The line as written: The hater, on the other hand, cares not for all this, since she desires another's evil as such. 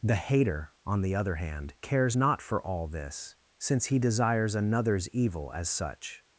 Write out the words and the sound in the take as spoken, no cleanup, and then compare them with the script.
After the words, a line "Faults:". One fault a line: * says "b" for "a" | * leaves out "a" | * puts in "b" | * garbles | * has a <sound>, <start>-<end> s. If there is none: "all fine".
The hater, on the other hand, cares not for all this, since he desires another's evil as such.
Faults:
* says "he" for "she"